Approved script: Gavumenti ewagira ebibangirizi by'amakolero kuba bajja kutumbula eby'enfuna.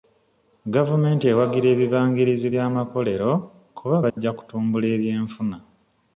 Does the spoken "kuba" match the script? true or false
true